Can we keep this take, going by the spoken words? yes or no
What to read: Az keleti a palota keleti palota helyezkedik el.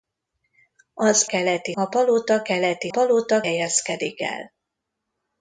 yes